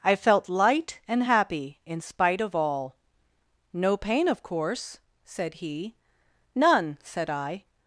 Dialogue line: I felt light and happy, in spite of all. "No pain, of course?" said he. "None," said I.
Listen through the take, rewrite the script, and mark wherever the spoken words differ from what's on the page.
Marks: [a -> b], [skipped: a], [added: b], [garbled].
I felt light and happy, in spite of all. "No pain, of course?" said he. "None," said I.